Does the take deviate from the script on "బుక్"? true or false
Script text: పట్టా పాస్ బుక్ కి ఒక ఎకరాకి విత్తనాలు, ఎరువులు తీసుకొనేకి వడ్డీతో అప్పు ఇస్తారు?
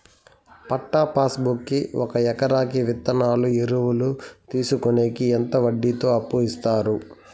false